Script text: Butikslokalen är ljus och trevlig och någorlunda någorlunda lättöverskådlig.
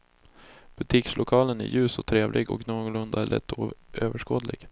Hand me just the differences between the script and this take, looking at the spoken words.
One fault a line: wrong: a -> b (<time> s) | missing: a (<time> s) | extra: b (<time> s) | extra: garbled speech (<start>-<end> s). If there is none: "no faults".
missing: någorlunda (3.3 s)